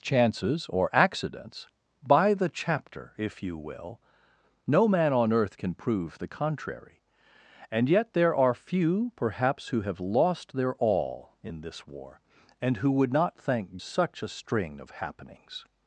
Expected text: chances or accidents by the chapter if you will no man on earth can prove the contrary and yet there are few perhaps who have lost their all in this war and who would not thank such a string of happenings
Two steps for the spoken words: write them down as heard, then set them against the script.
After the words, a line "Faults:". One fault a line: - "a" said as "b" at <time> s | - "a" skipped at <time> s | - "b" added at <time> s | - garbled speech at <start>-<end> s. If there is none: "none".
chances or accidents by the chapter if you will no man on earth can prove the contrary and yet there are few perhaps who have lost their all in this war and who would not thank such a string of happenings
Faults:
none